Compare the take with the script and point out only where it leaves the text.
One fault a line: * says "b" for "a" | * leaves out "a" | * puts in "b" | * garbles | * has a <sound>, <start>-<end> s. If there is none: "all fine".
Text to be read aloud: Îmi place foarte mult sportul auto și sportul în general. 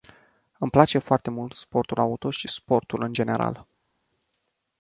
all fine